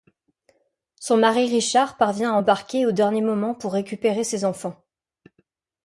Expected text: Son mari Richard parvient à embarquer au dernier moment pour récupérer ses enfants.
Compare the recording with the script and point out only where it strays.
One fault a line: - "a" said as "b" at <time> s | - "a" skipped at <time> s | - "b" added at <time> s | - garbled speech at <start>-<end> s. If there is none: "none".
none